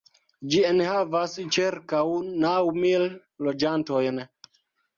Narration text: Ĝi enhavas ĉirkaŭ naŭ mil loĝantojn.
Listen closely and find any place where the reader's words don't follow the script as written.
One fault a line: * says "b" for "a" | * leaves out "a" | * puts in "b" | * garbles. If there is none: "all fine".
all fine